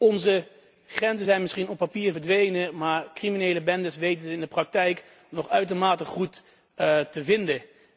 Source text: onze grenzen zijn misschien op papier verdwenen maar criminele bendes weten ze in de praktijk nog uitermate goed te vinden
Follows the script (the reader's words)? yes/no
yes